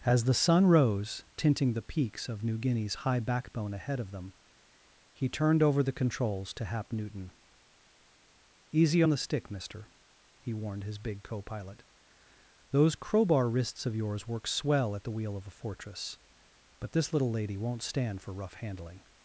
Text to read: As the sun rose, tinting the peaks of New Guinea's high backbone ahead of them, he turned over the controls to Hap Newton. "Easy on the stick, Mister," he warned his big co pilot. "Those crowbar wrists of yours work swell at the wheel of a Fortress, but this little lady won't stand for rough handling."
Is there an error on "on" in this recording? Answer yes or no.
yes